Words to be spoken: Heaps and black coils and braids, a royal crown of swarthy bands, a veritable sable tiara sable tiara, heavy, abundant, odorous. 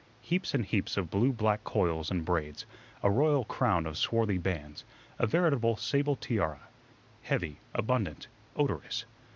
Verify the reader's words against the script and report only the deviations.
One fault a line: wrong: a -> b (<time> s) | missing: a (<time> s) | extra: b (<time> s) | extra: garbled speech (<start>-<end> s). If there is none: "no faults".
extra: heaps of blue (0.6 s)
missing: sable tiara (6.7 s)